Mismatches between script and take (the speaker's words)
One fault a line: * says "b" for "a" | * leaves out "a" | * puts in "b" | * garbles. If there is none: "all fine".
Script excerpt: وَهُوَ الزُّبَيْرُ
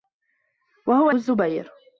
all fine